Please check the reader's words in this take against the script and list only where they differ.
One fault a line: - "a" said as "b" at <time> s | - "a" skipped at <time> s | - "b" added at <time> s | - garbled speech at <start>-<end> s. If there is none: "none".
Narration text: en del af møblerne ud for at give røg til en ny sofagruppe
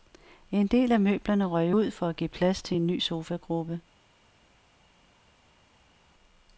- "røg" added at 1.4 s
- "røg" said as "plads" at 2.3 s